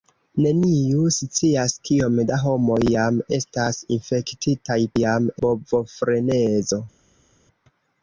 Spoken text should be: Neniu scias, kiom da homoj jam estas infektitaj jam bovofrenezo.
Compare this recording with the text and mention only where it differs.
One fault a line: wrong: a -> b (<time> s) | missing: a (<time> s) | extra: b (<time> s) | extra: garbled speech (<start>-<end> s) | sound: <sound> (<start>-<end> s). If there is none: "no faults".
no faults